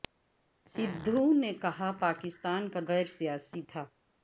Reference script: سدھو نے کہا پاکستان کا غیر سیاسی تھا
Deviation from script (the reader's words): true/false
false